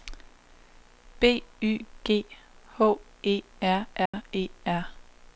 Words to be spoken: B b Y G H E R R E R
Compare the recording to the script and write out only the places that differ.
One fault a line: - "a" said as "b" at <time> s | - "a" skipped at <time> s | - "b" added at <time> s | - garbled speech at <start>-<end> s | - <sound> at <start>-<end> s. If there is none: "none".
- "b" skipped at 1.4 s
- dropout at 4.1-4.1 s